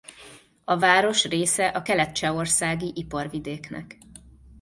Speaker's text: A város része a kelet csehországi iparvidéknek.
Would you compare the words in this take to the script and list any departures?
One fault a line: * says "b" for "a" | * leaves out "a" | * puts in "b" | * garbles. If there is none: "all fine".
all fine